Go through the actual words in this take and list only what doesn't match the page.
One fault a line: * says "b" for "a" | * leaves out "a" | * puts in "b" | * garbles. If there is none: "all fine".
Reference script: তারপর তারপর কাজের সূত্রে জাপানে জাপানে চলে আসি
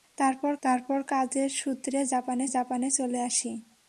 all fine